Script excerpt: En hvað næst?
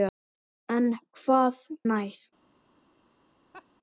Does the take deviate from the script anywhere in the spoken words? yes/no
no